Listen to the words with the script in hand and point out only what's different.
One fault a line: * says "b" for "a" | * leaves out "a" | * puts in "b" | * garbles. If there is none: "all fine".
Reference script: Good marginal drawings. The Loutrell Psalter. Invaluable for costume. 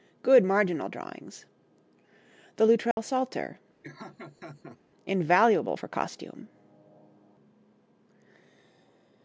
all fine